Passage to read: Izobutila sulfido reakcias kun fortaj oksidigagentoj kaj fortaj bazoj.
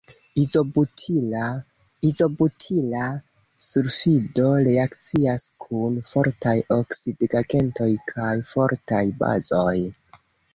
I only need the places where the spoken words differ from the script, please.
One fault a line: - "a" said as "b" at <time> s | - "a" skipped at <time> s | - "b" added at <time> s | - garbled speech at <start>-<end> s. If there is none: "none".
- "izobutila" added at 2.1 s